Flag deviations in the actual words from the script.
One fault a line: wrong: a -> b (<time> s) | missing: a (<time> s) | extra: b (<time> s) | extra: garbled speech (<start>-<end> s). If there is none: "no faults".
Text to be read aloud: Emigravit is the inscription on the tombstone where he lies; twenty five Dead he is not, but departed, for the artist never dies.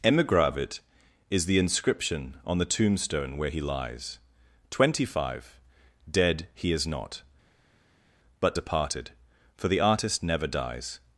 no faults